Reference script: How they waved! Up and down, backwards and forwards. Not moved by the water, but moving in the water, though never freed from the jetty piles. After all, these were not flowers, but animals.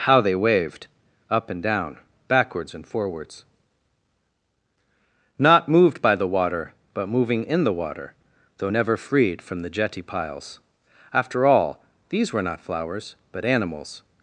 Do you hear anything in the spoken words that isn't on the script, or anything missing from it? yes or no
no